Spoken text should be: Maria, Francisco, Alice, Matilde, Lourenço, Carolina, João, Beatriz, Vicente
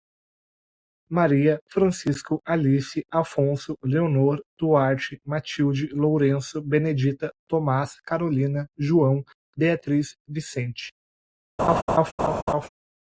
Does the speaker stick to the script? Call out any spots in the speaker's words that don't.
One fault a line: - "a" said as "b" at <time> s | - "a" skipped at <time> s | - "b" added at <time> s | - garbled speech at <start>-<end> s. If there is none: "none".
- "Afonso Leonor Duarte" added at 3.1 s
- "Benedita Tomás" added at 6.6 s